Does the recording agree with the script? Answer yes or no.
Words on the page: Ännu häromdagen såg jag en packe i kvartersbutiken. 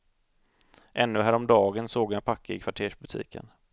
yes